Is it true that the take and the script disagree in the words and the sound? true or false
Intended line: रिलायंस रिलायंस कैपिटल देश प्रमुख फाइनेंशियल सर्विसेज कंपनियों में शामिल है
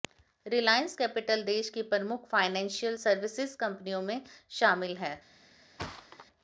true